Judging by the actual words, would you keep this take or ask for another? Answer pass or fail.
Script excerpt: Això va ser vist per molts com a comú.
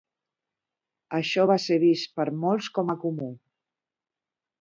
pass